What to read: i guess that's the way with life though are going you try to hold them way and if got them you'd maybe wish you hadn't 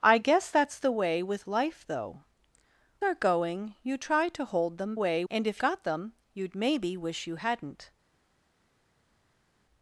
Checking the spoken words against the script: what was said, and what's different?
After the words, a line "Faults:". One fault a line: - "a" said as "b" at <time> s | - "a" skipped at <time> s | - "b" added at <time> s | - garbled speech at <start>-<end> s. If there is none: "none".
i guess that's the way with life though are going you try to hold them way and if got them you'd maybe wish you hadn't
Faults:
none